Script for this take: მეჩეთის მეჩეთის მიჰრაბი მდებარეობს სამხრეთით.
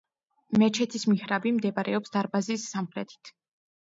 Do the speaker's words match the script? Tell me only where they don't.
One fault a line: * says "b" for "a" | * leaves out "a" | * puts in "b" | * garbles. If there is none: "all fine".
* leaves out "მეჩეთის"
* puts in "დარბაზის"